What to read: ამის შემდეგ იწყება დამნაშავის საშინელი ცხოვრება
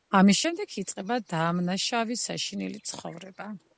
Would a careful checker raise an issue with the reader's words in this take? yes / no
no